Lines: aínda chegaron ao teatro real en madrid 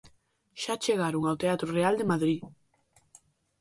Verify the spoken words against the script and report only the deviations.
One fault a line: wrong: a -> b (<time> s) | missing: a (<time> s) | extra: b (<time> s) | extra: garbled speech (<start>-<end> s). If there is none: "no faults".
wrong: aínda -> xa (0.6 s)
wrong: en -> de (2.0 s)